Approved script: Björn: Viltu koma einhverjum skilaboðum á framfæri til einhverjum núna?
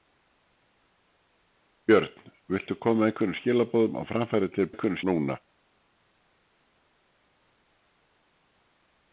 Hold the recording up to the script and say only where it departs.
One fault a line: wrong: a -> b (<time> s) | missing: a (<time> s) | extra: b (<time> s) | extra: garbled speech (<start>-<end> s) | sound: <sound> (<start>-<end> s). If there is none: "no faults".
no faults